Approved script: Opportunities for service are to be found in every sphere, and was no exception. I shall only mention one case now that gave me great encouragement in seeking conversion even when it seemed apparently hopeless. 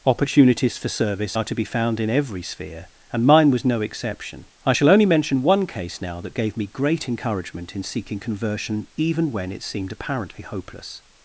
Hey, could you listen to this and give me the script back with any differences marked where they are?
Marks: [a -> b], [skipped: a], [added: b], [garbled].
Opportunities for service are to be found in every sphere, and [added: mine] was no exception. I shall only mention one case now that gave me great encouragement in seeking conversion even when it seemed apparently hopeless.